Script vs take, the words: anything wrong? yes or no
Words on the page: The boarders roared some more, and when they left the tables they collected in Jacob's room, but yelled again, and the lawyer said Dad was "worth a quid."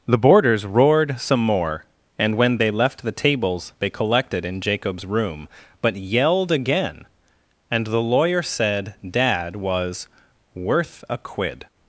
no